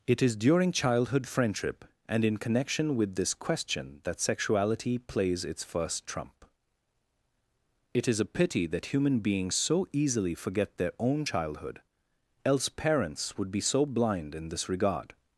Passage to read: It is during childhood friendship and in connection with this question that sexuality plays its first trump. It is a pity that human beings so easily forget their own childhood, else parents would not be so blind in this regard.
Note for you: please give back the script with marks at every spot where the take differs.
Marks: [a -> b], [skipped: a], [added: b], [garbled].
It is during childhood friendship and in connection with this question that sexuality plays its first trump. It is a pity that human beings so easily forget their own childhood, else parents would [skipped: not] be so blind in this regard.